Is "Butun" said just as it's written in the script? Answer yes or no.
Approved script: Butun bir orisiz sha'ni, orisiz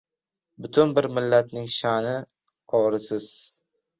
yes